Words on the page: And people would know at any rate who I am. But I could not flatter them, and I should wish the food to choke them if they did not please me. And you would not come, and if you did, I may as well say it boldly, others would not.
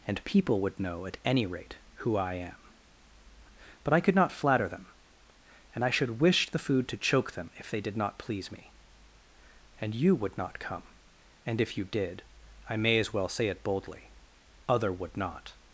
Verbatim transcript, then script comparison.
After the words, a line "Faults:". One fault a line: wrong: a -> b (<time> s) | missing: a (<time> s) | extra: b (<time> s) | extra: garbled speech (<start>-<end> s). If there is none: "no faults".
And people would know at any rate who I am. But I could not flatter them, and I should wish the food to choke them if they did not please me. And you would not come, and if you did, I may as well say it boldly, other would not.
Faults:
wrong: others -> other (14.7 s)